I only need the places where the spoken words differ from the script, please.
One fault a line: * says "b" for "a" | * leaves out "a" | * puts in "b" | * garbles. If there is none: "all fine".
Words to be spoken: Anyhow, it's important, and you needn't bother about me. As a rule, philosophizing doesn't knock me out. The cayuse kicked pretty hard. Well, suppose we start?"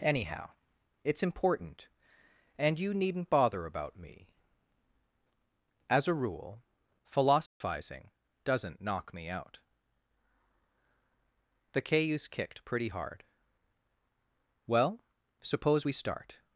all fine